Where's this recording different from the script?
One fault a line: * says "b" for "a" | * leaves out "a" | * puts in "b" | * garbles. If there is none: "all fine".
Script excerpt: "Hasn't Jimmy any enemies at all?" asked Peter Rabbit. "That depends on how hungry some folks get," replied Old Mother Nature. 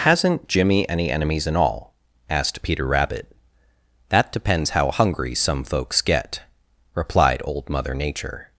* says "in" for "at"
* leaves out "on"